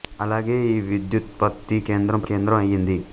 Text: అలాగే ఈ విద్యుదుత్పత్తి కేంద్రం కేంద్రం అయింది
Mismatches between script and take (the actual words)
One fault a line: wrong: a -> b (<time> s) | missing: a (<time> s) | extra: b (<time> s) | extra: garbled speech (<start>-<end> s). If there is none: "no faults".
no faults